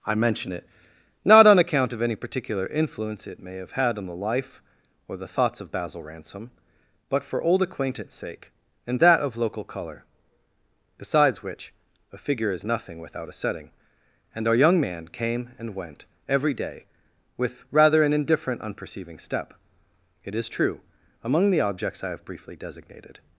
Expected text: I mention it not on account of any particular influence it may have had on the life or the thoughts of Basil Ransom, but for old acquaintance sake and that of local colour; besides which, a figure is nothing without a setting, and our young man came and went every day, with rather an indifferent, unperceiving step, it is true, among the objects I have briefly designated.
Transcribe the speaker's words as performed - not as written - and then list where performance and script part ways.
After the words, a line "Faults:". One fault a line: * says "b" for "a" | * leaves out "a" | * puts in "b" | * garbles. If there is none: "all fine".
I mention it not on account of any particular influence it may have had on the life or the thoughts of Basil Ransom, but for old acquaintance sake and that of local colour; besides which, a figure is nothing without a setting, and our young man came and went every day, with rather an indifferent, unperceiving step, it is true, among the objects I have briefly designated.
Faults:
all fine